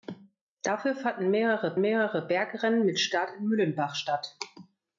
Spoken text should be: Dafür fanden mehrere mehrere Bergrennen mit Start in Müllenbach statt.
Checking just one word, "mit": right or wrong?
right